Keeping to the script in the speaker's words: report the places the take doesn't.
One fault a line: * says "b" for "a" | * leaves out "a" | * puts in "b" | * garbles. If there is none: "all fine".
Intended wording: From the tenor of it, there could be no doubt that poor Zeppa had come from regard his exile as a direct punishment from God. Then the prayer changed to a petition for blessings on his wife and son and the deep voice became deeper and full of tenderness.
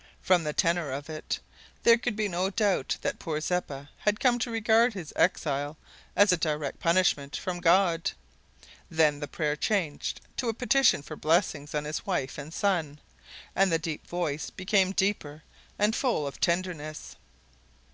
* says "to" for "from"